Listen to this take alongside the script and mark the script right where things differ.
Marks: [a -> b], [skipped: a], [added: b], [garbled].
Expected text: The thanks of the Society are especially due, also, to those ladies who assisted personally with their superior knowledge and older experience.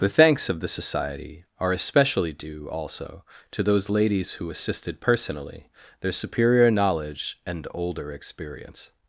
The thanks of the Society are especially due, also, to those ladies who assisted personally [skipped: with] their superior knowledge and older experience.